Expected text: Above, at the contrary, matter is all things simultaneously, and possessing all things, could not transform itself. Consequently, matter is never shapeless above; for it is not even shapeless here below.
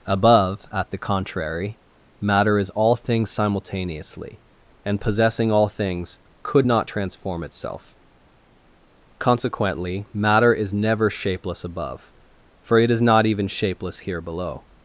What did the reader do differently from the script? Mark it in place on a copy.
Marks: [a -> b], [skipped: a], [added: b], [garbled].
Above, at the contrary, matter is all things simultaneously, and possessing all things, could not transform itself. Consequently, matter is never shapeless above; for it is not even shapeless here below.